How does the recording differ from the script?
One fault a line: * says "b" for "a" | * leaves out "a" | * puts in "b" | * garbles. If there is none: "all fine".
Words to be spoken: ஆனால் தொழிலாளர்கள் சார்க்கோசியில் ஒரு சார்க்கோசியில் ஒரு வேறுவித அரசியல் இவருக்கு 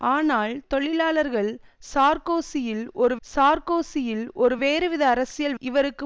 all fine